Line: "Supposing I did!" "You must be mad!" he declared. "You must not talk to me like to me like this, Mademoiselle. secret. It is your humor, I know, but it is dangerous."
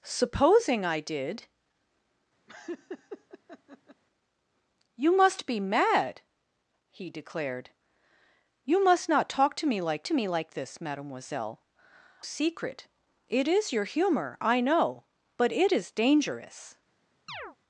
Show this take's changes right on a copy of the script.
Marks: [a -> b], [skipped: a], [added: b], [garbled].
"Supposing I did!" "You must be mad!" he declared. "You must not talk to me like to me like this, Mademoiselle. secret. It is your humor, I know, but it is dangerous."